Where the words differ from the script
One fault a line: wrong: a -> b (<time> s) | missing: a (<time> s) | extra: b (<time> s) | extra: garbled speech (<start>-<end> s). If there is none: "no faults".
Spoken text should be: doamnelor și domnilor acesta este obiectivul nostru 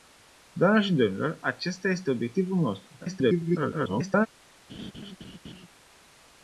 extra: garbled speech (3.0-4.3 s)